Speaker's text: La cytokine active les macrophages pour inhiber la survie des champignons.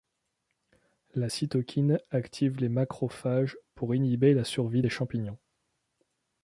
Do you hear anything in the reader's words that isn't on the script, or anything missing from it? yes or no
no